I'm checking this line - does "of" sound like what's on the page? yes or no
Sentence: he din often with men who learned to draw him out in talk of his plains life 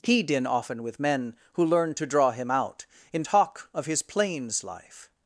yes